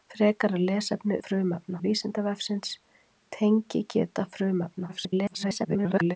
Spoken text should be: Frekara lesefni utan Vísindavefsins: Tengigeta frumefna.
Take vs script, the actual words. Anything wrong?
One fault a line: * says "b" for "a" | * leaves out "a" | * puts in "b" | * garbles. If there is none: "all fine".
* says "frumefna" for "utan"
* garbles